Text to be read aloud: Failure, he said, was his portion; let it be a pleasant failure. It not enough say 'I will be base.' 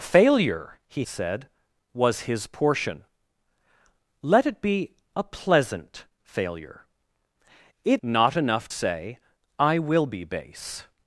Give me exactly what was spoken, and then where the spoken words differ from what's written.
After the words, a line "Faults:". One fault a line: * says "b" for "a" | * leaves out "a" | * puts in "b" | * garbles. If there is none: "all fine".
Failure, he said, was his portion; let it be a pleasant failure. It not enough say 'I will be base.'
Faults:
all fine